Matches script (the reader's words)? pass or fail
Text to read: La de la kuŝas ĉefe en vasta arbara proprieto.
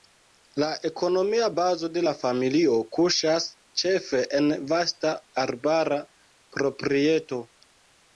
fail